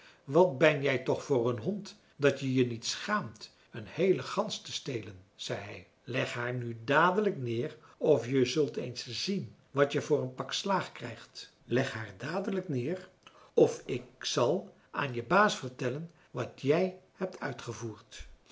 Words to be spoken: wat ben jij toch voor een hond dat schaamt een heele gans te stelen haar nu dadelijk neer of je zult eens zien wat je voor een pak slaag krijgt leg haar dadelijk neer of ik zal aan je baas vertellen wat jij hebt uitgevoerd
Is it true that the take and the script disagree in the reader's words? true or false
true